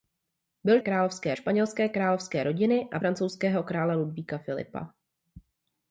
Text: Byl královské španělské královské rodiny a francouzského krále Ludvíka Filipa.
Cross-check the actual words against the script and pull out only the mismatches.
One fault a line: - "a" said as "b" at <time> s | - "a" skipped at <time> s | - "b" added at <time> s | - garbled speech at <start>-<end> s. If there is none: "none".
none